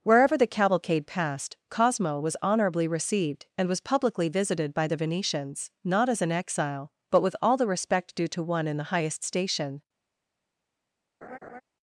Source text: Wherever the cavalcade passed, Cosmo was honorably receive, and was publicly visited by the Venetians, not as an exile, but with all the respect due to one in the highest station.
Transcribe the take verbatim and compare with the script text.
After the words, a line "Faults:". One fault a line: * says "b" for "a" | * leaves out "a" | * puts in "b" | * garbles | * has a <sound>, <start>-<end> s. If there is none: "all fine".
Wherever the cavalcade passed, Cosmo was honorably received, and was publicly visited by the Venetians, not as an exile, but with all the respect due to one in the highest station.
Faults:
* says "received" for "receive"
* has a laugh, 11.2-11.6 s